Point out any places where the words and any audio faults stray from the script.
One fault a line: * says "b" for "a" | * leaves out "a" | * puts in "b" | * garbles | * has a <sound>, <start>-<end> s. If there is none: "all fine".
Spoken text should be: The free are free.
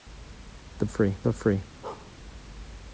* has a bark, 1.8-2.1 s